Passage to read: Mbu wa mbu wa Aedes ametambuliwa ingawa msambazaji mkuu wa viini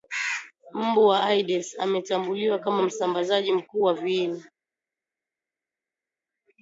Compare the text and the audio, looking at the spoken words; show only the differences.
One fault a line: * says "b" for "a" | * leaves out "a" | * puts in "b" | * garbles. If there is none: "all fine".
* leaves out "mbu wa"
* says "kama" for "ingawa"